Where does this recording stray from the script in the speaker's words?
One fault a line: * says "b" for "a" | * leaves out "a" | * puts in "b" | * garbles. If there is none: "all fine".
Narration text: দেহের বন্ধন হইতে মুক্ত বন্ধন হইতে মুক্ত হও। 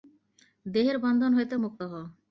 * leaves out "বন্ধন হইতে মুক্ত"